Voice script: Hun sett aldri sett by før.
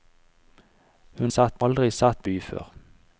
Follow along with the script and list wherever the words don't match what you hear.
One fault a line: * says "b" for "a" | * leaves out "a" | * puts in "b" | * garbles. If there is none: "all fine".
all fine